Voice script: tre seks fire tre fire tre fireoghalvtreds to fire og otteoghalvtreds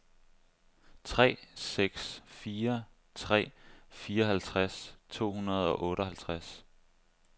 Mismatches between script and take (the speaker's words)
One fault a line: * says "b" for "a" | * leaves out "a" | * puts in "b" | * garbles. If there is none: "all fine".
* leaves out "fire tre"
* says "hundrede" for "fire"